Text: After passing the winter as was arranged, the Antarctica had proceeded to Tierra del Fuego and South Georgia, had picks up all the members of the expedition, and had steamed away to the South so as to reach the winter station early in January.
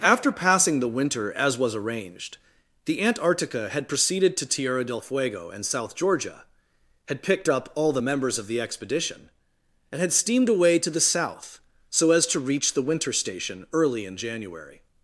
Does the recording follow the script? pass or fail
fail